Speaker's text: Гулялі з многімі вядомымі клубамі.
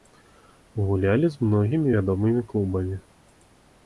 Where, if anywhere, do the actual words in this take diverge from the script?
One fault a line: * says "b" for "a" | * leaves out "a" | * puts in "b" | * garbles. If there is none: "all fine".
all fine